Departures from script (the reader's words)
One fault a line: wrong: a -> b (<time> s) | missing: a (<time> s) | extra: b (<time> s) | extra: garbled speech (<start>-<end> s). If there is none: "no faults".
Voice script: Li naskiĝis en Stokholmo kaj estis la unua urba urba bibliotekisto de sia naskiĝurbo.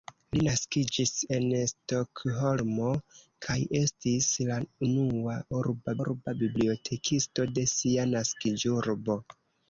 no faults